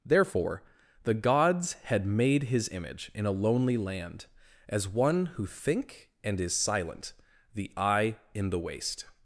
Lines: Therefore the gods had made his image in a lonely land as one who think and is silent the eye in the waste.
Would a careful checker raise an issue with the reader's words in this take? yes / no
no